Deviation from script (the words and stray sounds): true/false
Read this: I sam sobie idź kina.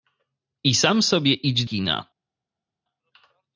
false